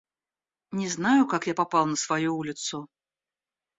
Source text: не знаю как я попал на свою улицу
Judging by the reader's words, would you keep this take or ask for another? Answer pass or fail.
pass